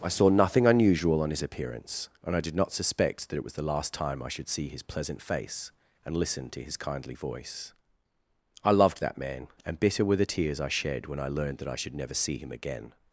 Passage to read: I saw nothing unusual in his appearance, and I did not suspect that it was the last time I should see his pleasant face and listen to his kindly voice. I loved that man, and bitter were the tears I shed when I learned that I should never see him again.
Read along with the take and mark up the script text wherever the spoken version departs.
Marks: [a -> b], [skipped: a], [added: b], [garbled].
I saw nothing unusual [in -> on] his appearance, and I did not suspect that it was the last time I should see his pleasant face and listen to his kindly voice. I loved that man, and bitter were the tears I shed when I learned that I should never see him again.